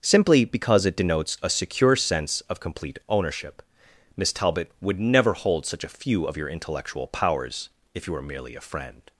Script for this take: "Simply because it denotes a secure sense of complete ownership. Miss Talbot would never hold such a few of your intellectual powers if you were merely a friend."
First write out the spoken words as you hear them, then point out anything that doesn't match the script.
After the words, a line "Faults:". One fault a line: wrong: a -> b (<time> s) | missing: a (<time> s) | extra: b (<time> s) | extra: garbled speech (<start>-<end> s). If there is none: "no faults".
"Simply because it denotes a secure sense of complete ownership. Miss Talbot would never hold such a few of your intellectual powers if you were merely a friend."
Faults:
no faults